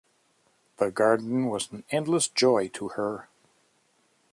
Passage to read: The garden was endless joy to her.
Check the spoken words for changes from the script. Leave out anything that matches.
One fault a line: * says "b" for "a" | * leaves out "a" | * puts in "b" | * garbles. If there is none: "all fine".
* puts in "an"